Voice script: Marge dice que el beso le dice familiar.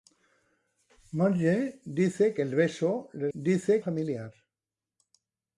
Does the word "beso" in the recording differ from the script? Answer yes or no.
no